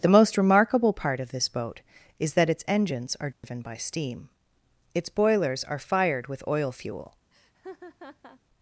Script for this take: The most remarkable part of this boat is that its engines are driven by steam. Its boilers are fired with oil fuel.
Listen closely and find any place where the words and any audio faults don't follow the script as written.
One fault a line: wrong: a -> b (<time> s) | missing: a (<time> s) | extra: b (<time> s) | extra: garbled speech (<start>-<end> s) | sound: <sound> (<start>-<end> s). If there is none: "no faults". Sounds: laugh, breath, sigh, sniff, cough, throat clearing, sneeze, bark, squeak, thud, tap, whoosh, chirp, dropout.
sound: dropout (3.3-3.4 s)
sound: laugh (7.3-8.4 s)